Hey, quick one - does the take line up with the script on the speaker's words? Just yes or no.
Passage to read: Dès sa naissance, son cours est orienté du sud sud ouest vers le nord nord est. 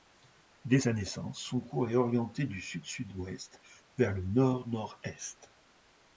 yes